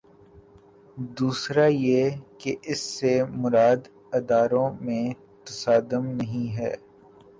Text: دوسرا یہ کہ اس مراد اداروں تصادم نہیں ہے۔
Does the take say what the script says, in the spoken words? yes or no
no